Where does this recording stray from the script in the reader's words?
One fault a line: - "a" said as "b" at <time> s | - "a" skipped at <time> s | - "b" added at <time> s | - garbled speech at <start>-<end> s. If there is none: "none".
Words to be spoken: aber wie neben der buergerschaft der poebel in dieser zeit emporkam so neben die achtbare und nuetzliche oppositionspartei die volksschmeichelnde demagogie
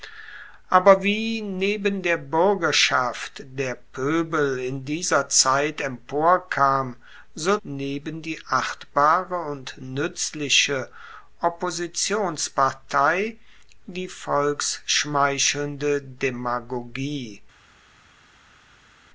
none